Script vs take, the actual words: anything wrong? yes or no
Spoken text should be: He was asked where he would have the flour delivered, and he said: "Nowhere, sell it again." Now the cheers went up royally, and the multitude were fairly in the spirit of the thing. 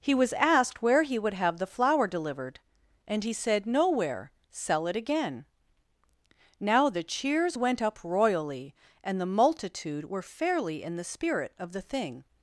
no